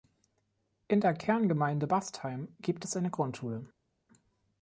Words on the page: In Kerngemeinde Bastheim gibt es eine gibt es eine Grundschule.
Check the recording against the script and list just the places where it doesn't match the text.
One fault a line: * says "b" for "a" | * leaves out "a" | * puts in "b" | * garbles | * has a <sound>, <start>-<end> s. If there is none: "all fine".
* puts in "der"
* leaves out "gibt es eine"